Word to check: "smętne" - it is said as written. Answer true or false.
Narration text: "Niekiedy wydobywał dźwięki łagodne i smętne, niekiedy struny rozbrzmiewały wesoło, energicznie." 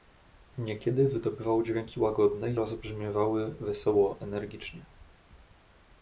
false